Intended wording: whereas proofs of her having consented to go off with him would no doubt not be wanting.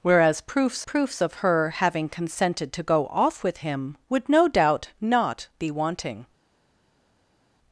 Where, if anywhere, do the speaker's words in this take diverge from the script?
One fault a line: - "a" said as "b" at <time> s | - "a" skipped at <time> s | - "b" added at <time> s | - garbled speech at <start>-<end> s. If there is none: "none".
- "proofs" added at 0.8 s